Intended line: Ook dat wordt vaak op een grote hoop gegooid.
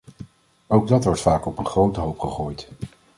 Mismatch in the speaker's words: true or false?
false